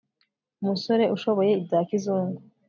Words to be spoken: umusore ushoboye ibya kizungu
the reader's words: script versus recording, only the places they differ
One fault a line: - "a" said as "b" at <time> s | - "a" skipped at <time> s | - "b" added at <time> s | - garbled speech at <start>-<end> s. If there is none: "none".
none